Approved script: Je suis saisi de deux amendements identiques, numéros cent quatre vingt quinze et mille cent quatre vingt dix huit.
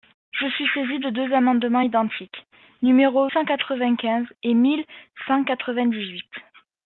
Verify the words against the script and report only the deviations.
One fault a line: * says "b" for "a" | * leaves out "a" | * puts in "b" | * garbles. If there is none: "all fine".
all fine